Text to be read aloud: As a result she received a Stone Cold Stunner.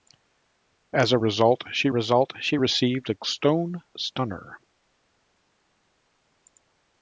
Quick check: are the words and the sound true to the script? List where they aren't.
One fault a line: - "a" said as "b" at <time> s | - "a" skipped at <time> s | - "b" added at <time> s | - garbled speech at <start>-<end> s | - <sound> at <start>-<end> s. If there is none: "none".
- "result she" added at 1.9 s
- "Cold" skipped at 3.8 s